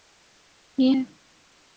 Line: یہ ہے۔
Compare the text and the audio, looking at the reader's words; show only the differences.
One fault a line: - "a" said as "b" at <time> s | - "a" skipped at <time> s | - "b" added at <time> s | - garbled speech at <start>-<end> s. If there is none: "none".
none